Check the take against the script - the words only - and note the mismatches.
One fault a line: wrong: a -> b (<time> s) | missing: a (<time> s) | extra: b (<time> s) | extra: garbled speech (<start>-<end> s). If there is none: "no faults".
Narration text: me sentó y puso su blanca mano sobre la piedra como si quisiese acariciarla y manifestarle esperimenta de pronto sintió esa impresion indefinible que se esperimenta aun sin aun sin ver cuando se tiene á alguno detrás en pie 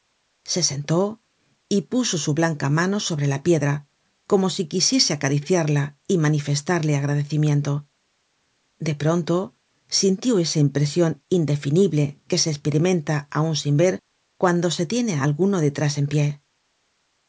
wrong: me -> se (0.4 s)
wrong: esperimenta -> agradecimiento (7.0 s)
missing: aun sin (13.8 s)